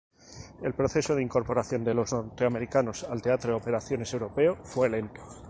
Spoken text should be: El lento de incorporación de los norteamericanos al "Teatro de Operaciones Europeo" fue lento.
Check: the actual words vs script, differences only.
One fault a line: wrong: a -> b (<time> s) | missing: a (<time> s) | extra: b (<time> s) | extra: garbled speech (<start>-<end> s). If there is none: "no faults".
wrong: lento -> proceso (0.7 s)